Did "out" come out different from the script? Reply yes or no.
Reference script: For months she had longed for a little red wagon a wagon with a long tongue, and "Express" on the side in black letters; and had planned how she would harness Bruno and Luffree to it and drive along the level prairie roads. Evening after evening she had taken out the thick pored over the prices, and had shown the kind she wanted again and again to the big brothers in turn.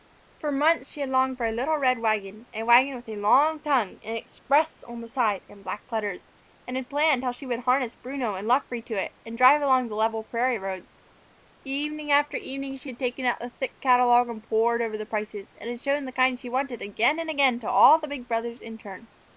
no